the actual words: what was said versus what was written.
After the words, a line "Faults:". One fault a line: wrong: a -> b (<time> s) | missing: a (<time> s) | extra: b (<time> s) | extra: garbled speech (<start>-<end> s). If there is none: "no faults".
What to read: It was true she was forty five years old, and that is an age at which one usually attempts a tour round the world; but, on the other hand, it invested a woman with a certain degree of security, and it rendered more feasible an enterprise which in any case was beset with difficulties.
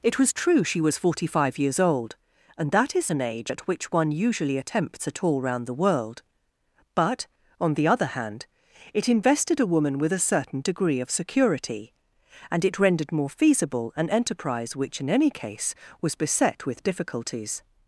It was true she was forty five years old, and that is an age at which one usually attempts a tour round the world; but, on the other hand, it invested a woman with a certain degree of security, and it rendered more feasible an enterprise which in any case was beset with difficulties.
Faults:
no faults